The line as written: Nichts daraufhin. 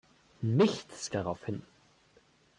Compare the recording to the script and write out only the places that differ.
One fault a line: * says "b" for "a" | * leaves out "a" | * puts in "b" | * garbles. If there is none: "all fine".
all fine